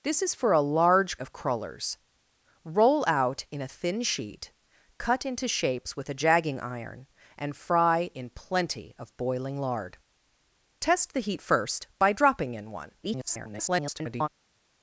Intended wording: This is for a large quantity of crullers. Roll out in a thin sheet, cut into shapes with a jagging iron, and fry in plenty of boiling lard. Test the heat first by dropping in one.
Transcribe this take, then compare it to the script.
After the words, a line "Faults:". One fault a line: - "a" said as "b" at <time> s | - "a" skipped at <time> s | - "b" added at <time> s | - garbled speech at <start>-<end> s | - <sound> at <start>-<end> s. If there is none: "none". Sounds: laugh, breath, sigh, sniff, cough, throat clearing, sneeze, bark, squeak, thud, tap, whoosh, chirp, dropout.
This is for a large of crullers. Roll out in a thin sheet, cut into shapes with a jagging iron, and fry in plenty of boiling lard. Test the heat first by dropping in one. [garbled]
Faults:
- "quantity" skipped at 1.2 s
- garbled speech at 13.0-14.3 s